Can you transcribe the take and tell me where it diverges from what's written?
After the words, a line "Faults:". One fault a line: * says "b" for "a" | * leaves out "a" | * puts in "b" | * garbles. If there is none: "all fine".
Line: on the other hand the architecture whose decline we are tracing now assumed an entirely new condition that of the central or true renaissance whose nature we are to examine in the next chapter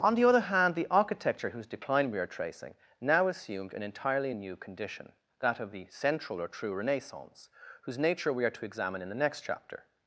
on the other hand the architecture whose decline we are tracing now assumed an entirely new condition that of the central or true renaissance whose nature we are to examine in the next chapter
Faults:
all fine